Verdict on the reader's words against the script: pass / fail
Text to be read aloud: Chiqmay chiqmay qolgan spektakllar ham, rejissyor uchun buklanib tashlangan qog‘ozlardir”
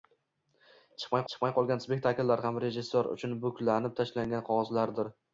pass